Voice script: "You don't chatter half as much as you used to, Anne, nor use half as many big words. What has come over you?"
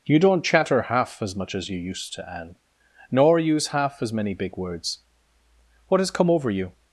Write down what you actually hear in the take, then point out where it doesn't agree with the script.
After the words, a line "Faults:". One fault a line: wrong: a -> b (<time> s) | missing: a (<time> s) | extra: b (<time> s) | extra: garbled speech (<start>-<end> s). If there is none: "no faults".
"You don't chatter half as much as you used to, Anne, nor use half as many big words. What has come over you?"
Faults:
no faults